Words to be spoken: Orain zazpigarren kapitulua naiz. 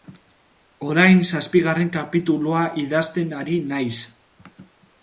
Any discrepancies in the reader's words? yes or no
yes